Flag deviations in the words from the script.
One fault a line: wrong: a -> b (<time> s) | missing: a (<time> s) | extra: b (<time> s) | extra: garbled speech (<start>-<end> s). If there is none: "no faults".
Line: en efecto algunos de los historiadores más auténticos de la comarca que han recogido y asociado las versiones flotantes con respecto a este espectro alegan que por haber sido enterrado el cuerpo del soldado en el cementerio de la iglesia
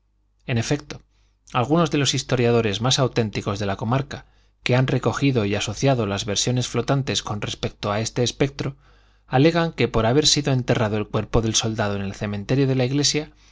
no faults